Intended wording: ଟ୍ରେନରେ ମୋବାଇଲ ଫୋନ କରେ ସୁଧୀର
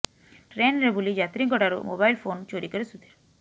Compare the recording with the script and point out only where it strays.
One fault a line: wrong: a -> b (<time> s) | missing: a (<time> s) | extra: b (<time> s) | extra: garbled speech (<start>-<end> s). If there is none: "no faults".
extra: ବୁଲି ଯାତ୍ରୀଙ୍କ ଠାରୁ (0.9 s)
extra: ଚୋରି (2.5 s)